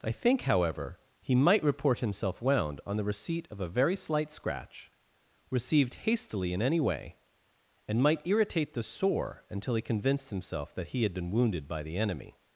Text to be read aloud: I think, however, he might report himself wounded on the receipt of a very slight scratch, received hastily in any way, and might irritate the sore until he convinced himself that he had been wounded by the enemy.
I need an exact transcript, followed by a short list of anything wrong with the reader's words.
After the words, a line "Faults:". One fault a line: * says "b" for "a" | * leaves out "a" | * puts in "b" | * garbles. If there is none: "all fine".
I think, however, he might report himself wound on the receipt of a very slight scratch, received hastily in any way, and might irritate the sore until he convinced himself that he had been wounded by the enemy.
Faults:
* says "wound" for "wounded"